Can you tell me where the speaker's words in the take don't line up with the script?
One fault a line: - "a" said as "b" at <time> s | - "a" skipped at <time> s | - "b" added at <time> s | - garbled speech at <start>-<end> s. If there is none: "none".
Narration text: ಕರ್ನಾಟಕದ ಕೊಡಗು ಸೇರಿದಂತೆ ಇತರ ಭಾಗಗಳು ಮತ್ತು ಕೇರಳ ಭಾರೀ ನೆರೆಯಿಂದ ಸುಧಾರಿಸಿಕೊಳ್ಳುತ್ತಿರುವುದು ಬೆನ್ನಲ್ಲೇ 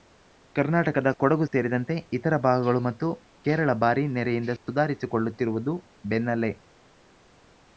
none